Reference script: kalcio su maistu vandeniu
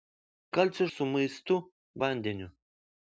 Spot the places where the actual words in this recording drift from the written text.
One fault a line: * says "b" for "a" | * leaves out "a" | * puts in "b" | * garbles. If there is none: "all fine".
all fine